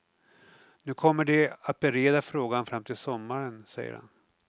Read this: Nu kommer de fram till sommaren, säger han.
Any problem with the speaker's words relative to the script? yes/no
yes